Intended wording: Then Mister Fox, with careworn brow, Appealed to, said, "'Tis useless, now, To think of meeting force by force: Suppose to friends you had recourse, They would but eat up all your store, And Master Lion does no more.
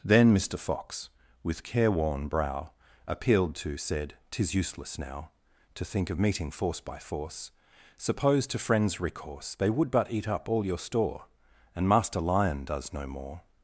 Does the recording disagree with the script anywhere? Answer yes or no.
yes